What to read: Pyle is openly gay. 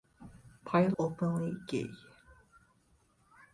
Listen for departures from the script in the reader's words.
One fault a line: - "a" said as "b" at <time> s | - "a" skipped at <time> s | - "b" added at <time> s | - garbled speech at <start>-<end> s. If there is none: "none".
- "is" skipped at 1.0 s